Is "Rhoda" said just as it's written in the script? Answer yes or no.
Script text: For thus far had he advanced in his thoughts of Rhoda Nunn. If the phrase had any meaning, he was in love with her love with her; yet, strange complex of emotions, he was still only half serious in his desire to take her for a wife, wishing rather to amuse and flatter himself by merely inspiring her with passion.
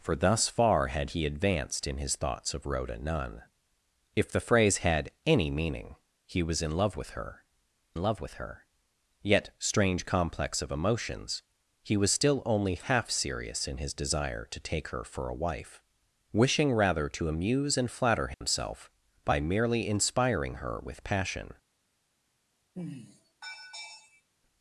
yes